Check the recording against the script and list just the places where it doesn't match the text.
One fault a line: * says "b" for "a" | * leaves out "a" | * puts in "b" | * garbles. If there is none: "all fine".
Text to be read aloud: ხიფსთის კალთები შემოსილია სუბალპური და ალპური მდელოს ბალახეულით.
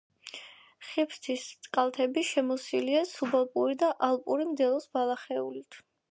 all fine